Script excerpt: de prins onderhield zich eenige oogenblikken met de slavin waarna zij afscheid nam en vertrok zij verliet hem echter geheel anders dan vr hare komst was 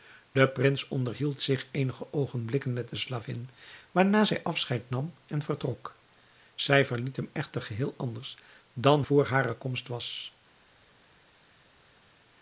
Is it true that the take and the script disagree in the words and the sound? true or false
false